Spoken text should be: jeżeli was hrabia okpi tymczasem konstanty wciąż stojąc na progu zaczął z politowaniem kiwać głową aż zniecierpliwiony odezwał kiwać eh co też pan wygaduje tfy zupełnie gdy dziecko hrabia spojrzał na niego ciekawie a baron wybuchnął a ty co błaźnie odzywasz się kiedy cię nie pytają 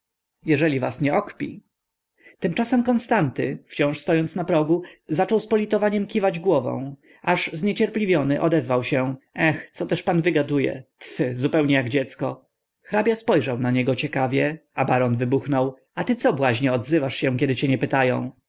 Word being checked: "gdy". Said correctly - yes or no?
no